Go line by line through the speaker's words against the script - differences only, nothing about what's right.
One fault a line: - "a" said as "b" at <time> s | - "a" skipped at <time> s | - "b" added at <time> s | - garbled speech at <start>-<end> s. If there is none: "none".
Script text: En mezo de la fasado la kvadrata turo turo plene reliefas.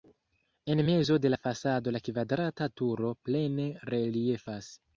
- "turo" skipped at 3.2 s